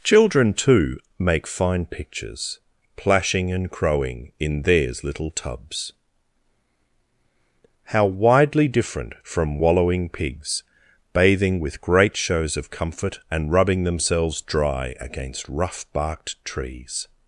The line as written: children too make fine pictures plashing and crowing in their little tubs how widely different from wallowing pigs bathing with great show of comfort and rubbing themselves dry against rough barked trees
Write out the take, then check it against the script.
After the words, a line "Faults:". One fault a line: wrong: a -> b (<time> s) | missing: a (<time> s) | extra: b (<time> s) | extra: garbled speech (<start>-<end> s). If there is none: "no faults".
children too make fine pictures plashing and crowing in theirs little tubs how widely different from wallowing pigs bathing with great shows of comfort and rubbing themselves dry against rough barked trees
Faults:
wrong: their -> theirs (4.6 s)
wrong: show -> shows (12.1 s)